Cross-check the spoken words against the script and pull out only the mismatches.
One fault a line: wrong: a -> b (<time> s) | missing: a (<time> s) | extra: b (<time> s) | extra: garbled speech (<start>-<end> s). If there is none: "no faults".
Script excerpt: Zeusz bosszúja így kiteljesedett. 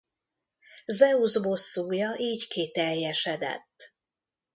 no faults